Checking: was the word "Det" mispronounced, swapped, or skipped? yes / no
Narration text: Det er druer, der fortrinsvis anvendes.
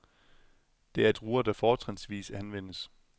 no